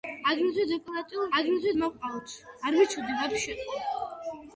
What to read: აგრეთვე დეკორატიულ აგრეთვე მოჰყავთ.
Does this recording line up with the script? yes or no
yes